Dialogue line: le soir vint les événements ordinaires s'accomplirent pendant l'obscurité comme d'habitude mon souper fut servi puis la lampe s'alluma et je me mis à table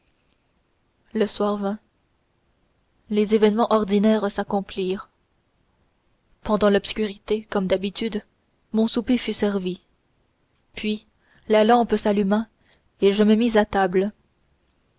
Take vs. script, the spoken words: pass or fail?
pass